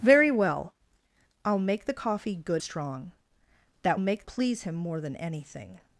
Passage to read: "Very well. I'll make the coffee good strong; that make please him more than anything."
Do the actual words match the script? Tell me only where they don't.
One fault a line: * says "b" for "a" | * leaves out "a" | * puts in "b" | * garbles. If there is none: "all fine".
all fine